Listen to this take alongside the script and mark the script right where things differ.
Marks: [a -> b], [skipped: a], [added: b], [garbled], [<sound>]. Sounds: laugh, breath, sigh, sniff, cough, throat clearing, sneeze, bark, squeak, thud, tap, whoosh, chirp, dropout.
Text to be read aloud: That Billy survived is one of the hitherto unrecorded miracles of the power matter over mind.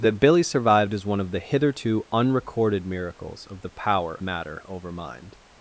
That Billy survived is one of the hitherto unrecorded miracles of the power matter over mind.